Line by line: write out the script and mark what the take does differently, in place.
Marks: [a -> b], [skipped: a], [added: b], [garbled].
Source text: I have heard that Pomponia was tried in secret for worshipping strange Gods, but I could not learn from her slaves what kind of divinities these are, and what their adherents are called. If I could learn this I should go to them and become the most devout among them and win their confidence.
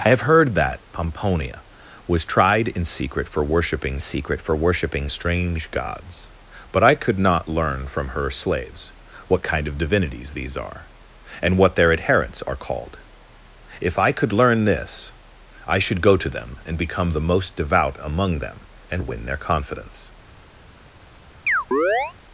I have heard that Pomponia was tried in secret for worshipping [added: secret for worshipping] strange Gods, but I could not learn from her slaves what kind of divinities these are, and what their adherents are called. If I could learn this I should go to them and become the most devout among them and win their confidence.